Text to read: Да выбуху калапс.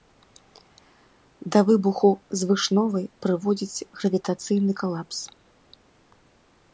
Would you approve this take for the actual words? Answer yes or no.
no